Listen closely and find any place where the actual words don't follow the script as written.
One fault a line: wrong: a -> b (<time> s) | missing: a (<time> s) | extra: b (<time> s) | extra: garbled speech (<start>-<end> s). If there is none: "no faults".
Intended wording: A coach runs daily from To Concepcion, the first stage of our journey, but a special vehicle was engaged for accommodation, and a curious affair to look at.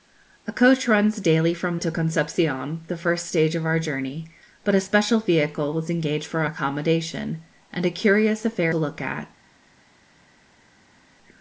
no faults